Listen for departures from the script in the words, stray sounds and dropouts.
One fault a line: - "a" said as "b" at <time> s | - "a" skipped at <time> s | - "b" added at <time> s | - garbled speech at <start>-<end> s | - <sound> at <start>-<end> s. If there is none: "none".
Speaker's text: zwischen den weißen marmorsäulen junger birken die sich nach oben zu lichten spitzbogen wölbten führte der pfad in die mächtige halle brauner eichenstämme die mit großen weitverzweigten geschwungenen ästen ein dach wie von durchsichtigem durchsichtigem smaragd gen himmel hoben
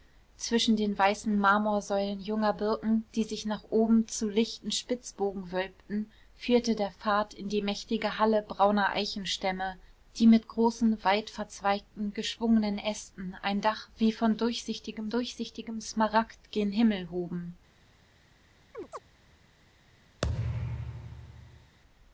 - chirp at 18.7-19.0 s
- thud at 20.2-21.8 s